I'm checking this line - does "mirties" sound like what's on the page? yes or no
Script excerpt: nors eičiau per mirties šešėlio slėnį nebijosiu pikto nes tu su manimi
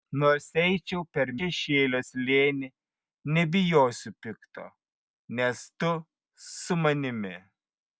no